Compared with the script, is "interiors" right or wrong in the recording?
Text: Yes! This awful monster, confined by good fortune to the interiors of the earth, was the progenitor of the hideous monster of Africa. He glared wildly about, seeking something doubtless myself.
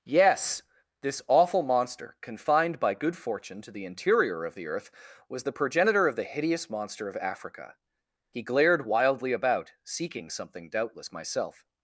wrong